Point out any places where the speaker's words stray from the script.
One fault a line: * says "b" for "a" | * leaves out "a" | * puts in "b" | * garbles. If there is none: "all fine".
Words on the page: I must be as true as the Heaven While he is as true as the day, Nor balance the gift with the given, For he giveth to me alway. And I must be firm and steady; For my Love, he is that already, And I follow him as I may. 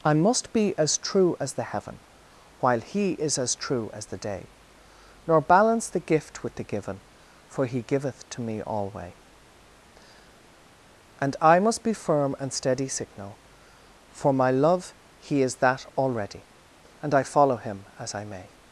* puts in "signal"